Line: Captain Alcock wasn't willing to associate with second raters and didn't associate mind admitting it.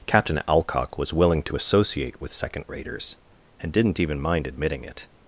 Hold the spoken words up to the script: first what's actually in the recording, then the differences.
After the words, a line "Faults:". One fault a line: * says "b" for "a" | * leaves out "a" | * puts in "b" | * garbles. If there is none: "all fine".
Captain Alcock was willing to associate with second raters and didn't even mind admitting it.
Faults:
* says "was" for "wasn't"
* says "even" for "associate"